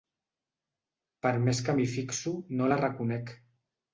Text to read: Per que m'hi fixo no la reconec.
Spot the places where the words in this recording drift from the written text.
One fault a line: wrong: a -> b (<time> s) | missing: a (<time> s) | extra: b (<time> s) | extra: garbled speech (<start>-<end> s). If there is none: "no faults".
extra: més (1.4 s)